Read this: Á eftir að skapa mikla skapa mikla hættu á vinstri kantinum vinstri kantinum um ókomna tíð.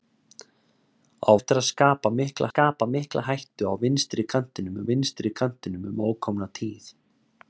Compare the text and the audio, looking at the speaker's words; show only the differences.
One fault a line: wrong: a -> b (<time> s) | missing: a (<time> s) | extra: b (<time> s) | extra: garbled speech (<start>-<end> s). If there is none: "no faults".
no faults